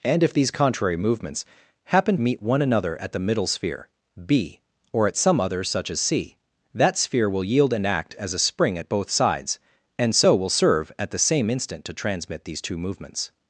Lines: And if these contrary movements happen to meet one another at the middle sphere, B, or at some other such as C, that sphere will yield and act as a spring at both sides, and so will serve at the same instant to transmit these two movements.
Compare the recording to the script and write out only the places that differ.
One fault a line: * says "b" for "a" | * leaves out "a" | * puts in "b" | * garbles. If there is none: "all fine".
* leaves out "to"